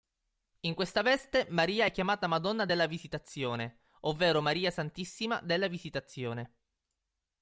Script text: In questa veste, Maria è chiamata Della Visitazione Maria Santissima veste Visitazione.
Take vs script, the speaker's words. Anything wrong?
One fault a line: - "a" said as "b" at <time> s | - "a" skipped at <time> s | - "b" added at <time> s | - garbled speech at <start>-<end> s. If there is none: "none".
- "Madonna" added at 2.3 s
- "ovvero" added at 4.0 s
- "veste" said as "della" at 5.4 s